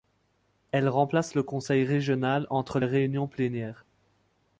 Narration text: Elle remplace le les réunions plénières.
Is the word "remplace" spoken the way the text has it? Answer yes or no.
yes